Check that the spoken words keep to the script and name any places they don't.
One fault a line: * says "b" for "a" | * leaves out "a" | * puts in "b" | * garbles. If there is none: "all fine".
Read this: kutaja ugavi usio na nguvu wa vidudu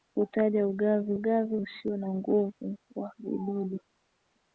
* puts in "ugavi"